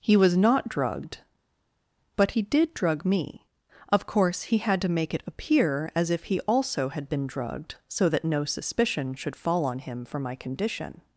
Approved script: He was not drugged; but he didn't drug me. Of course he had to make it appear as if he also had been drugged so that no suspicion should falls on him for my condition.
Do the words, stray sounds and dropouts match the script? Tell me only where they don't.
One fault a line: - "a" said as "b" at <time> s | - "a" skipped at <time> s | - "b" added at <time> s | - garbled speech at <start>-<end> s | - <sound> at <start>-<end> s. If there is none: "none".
- "didn't" said as "did" at 2.4 s
- "falls" said as "fall" at 9.4 s